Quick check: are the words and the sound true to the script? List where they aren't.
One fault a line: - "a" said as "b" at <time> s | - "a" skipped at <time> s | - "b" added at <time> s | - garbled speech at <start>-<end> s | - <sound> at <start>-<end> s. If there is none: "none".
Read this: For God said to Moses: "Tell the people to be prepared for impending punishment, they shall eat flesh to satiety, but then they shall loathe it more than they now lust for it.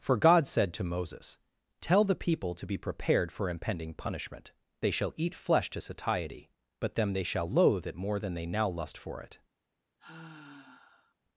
- "then" said as "them" at 7.0 s
- sigh at 10.0-11.1 s